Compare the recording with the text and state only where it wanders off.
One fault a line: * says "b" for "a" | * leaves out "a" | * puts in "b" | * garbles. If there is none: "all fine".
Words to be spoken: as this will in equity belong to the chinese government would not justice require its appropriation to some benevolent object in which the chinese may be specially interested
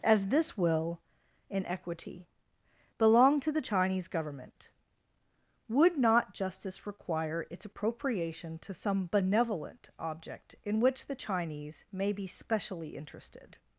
all fine